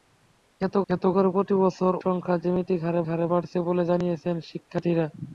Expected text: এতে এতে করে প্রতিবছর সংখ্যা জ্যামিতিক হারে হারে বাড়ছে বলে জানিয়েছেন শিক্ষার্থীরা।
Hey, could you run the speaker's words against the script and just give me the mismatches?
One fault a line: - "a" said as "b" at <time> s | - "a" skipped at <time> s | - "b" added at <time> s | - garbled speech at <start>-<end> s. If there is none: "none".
none